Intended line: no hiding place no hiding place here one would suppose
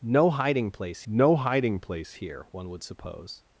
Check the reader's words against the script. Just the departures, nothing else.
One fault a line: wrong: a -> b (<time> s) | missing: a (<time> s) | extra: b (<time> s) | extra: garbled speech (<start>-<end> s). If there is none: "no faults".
no faults